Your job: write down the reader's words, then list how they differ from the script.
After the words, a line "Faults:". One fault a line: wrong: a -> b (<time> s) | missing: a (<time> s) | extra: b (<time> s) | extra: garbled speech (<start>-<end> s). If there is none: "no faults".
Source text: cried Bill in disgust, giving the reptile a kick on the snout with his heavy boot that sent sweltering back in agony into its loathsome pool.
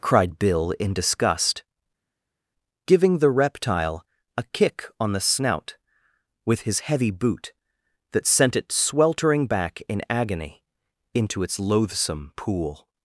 cried Bill in disgust, giving the reptile a kick on the snout with his heavy boot that sent it sweltering back in agony into its loathsome pool.
Faults:
extra: it (8.6 s)